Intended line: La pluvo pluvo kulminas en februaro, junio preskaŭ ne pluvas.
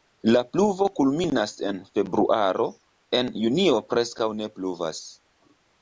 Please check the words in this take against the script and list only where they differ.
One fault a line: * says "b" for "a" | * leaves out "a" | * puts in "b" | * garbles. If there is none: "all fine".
* leaves out "pluvo"
* puts in "en"